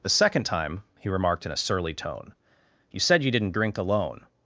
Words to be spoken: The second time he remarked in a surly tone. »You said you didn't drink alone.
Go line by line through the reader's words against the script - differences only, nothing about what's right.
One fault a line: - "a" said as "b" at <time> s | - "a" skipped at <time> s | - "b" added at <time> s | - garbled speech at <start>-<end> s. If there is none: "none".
none